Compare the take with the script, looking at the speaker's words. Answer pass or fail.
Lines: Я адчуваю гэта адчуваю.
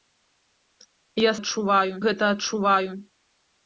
pass